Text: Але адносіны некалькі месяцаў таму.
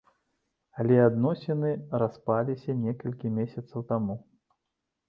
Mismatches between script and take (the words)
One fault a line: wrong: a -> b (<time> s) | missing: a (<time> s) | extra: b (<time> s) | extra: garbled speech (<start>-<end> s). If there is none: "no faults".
extra: распаліся (2.0 s)